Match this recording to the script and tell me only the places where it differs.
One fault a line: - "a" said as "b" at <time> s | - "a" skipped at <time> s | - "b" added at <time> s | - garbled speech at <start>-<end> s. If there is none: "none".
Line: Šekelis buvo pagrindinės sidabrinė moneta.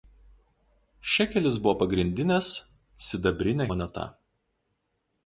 none